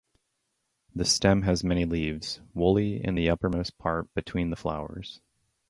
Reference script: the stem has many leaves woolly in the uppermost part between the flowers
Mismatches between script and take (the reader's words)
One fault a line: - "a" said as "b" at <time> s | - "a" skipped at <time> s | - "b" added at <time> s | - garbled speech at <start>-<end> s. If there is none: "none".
none